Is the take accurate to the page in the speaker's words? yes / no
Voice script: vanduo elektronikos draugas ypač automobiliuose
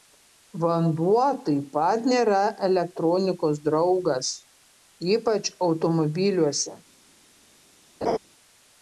no